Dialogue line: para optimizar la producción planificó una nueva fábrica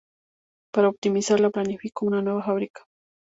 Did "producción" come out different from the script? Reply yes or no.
yes